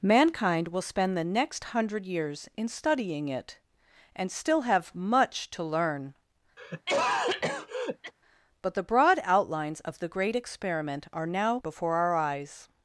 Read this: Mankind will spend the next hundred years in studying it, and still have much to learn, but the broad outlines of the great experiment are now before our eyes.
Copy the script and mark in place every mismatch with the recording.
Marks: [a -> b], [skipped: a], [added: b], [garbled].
Mankind will spend the next hundred years in studying it, and still have much to learn, but the broad outlines of the great experiment are now before our eyes.